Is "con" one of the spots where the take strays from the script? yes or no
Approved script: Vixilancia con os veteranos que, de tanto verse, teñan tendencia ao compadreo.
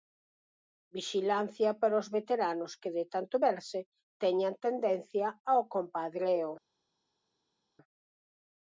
yes